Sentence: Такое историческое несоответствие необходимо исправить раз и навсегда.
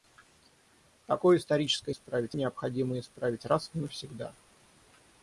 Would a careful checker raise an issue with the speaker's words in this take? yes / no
yes